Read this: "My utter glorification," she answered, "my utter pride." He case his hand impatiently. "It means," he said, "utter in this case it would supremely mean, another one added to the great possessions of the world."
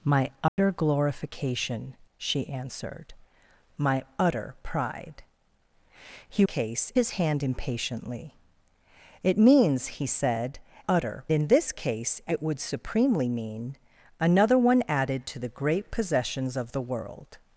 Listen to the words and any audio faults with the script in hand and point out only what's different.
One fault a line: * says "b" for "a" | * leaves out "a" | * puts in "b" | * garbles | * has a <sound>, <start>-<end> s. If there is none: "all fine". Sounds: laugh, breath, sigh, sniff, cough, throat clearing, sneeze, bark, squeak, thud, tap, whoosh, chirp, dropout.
* has a dropout, 0.5-0.6 s